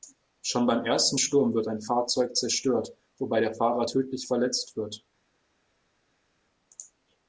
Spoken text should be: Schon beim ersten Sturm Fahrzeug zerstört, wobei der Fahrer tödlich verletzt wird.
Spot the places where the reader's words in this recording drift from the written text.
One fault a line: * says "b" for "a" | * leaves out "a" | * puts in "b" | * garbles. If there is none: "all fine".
* puts in "wird ein"